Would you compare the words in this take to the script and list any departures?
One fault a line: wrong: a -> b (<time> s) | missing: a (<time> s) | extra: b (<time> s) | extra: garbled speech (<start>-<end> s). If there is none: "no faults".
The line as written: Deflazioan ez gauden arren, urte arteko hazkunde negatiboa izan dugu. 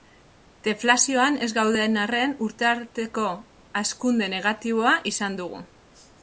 no faults